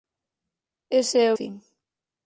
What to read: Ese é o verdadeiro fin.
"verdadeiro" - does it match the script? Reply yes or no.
no